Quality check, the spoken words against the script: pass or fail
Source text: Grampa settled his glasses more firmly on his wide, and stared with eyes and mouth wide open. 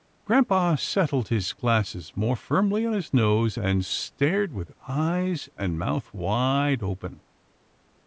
fail